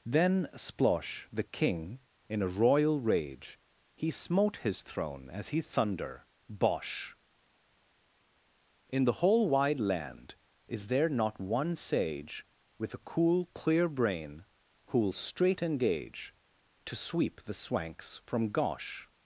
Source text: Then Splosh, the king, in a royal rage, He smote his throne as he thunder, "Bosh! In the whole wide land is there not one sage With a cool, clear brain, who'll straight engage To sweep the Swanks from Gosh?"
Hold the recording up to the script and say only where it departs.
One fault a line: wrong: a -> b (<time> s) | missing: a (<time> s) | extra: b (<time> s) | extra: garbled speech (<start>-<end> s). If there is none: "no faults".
no faults